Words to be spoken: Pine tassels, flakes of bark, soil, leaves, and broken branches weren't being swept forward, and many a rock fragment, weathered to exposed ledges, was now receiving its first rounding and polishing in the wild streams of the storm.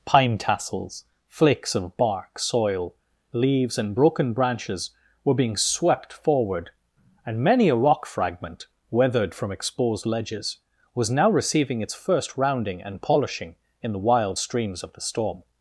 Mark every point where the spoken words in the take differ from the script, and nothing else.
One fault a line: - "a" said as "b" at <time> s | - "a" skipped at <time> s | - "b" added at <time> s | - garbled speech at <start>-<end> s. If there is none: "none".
- "weren't" said as "were" at 5.2 s
- "to" said as "from" at 9.3 s